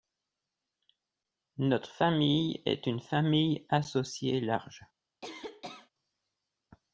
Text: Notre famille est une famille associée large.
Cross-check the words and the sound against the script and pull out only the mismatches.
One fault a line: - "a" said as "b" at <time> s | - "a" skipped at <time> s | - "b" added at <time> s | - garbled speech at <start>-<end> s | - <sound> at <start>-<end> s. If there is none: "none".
- cough at 5.2-5.9 s